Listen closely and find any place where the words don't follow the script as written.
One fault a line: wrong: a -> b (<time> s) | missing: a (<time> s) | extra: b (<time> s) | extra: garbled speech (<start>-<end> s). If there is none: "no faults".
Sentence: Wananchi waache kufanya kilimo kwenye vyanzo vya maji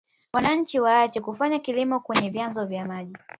no faults